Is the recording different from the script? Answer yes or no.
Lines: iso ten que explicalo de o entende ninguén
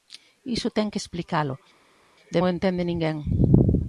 no